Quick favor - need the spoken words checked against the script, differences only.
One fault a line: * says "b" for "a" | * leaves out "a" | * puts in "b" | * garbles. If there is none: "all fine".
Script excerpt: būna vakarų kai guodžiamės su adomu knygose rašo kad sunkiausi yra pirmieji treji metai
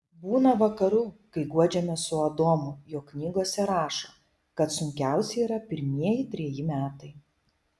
* puts in "jog"